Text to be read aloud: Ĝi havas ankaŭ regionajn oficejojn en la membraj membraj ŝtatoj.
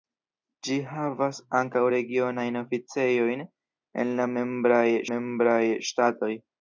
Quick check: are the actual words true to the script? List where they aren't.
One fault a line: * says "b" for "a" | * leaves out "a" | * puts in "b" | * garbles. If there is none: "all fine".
all fine